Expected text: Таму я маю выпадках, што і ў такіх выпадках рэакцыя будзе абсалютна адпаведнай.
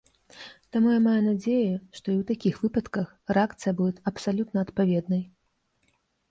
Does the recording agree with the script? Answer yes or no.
no